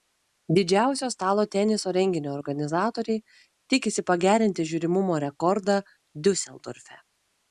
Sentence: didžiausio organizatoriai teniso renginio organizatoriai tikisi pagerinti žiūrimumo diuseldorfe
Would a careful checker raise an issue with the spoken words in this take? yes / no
yes